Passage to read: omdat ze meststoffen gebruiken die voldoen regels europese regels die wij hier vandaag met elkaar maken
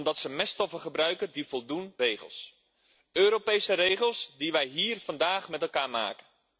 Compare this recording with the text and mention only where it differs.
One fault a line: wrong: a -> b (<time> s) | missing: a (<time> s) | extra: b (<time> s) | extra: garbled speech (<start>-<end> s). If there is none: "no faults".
no faults